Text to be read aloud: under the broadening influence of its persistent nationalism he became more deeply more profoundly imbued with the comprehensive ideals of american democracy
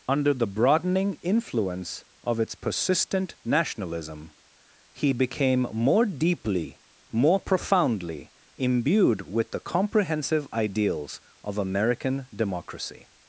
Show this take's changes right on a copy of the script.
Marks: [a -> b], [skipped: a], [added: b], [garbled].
under the broadening influence of its persistent nationalism he became more deeply more profoundly imbued with the comprehensive ideals of american democracy